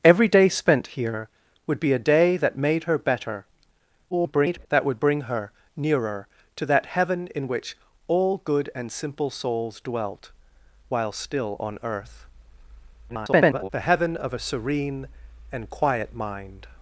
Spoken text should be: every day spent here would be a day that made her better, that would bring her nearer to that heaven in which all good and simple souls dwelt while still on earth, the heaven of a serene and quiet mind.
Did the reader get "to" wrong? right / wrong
right